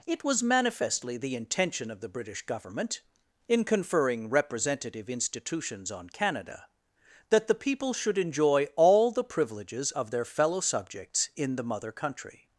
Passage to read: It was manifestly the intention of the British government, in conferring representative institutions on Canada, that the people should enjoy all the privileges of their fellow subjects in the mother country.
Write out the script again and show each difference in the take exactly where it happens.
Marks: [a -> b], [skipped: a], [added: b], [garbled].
It was manifestly the intention of the British government, in conferring representative institutions on Canada, that the people should enjoy all the privileges of their fellow subjects in the mother country.